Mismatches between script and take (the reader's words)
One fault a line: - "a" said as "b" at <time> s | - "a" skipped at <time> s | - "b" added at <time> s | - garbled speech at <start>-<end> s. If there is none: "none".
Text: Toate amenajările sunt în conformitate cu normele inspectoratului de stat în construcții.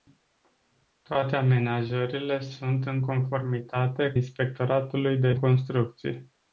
- "cu normele" skipped at 4.1 s
- "stat în" skipped at 5.3 s